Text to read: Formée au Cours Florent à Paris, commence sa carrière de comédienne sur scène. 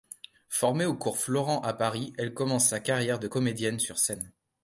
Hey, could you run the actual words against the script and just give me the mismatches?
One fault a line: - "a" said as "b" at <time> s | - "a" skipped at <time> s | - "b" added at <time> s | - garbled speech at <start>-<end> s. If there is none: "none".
- "elle" added at 2.2 s